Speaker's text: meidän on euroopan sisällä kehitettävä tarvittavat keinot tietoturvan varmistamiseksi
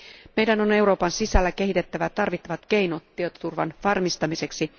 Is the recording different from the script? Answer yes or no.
no